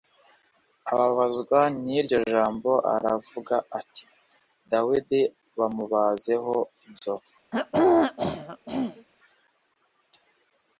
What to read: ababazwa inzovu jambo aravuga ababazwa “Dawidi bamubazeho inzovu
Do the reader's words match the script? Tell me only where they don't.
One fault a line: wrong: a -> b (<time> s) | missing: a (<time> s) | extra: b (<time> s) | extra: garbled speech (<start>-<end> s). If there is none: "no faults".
wrong: inzovu -> n'iryo (1.8 s)
wrong: ababazwa -> ati (3.8 s)